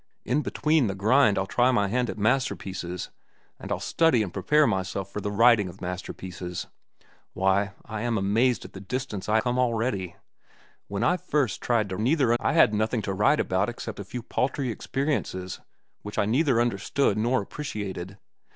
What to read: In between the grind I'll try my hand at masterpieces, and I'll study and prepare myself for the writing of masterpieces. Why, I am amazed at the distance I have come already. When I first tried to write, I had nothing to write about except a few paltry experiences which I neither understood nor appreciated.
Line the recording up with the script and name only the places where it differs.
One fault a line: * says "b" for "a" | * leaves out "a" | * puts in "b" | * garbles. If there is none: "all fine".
* leaves out "have"
* says "neither" for "write"